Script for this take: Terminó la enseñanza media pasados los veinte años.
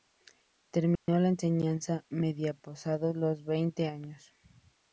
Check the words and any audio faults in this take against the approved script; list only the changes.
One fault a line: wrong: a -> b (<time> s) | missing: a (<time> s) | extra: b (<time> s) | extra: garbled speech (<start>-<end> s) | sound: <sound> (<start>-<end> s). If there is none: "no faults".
sound: dropout (1.0-1.1 s)